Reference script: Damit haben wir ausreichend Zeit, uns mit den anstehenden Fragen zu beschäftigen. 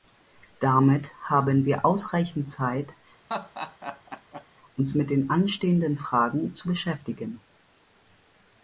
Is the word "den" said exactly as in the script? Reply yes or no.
yes